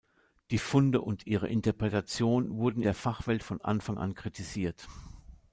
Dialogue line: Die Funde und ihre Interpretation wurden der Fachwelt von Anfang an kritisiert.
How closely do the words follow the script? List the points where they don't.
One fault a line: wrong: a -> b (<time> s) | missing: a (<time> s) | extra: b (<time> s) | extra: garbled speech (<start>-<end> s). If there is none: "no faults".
no faults